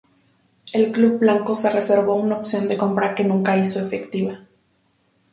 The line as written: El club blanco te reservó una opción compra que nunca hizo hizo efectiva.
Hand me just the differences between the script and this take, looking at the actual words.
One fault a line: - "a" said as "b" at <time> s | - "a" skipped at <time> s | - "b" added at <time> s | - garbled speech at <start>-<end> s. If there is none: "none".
- "te" said as "se" at 1.5 s
- "de" added at 2.7 s
- "hizo" skipped at 3.8 s